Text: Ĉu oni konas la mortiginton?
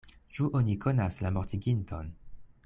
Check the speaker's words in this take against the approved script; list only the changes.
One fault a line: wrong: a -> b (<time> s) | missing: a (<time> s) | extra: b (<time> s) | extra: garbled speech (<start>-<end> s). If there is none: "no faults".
no faults